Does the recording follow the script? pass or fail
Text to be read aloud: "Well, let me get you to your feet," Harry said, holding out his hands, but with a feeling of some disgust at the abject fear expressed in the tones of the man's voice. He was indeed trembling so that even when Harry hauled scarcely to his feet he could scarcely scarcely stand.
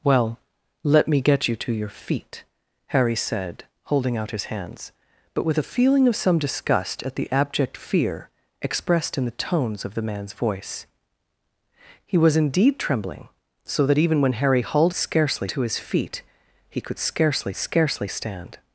pass